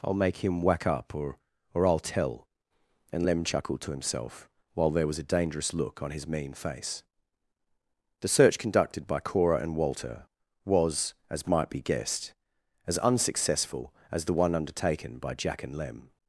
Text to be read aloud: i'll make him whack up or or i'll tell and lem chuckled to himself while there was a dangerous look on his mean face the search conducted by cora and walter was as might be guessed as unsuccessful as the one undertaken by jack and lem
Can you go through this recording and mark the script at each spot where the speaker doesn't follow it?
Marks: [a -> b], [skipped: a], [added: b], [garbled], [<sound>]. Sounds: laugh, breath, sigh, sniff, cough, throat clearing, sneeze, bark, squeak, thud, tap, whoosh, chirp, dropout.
i'll make him whack up or or i'll tell and lem chuckled to himself while there was a dangerous look on his mean face the search conducted by cora and walter was as might be guessed as unsuccessful as the one undertaken by jack and lem